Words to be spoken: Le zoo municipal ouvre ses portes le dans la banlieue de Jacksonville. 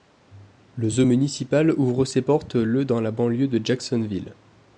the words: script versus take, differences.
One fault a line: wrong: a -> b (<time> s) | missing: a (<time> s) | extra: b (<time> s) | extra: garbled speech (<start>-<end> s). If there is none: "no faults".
no faults